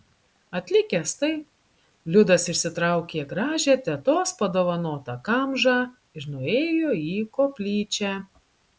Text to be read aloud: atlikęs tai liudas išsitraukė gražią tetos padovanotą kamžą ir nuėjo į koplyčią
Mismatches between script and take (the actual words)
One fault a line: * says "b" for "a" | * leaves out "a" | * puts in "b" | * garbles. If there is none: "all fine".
all fine